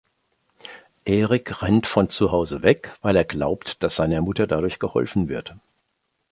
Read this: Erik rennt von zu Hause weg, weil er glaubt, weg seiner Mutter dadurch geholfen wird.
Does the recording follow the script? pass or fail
fail